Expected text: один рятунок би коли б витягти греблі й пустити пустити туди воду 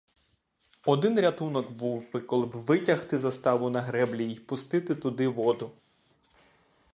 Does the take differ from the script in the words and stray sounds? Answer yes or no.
yes